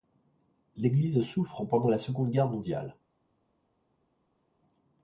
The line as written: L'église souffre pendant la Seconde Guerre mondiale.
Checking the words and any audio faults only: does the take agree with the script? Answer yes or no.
yes